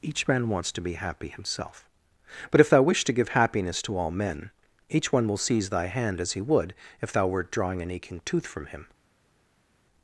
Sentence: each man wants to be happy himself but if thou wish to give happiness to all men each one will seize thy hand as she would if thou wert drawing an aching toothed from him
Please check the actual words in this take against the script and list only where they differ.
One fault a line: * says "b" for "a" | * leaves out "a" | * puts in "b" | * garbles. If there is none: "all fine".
* says "he" for "she"
* says "tooth" for "toothed"